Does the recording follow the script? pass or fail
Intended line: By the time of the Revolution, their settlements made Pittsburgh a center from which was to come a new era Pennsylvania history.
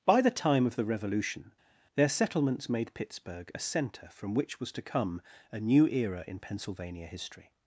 fail